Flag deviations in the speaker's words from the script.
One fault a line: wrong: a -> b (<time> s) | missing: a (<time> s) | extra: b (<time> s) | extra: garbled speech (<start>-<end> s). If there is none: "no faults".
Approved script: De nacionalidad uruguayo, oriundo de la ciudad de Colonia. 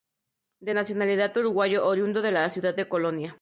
no faults